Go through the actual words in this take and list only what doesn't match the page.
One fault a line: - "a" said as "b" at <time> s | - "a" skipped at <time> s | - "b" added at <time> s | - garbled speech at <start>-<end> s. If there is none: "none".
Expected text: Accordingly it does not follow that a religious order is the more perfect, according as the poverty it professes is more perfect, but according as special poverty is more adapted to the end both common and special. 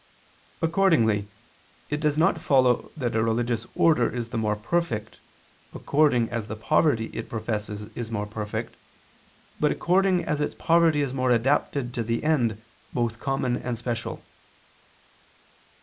- "special" said as "its" at 10.4 s